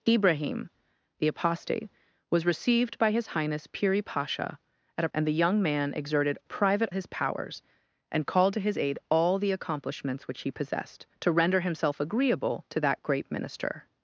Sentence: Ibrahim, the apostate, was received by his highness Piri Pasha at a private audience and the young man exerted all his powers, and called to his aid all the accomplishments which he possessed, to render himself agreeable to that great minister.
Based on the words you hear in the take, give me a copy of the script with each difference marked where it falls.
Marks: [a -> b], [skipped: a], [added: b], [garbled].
Ibrahim, the apostate, was received by his highness Piri Pasha at a [skipped: private audience] and the young man exerted [all -> private] his powers, and called to his aid all the accomplishments which he possessed, to render himself agreeable to that great minister.